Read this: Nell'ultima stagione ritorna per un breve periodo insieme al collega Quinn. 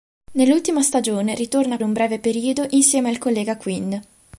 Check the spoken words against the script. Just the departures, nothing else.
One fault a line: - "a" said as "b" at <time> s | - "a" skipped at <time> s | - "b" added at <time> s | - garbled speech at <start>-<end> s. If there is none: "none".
- "per" skipped at 1.8 s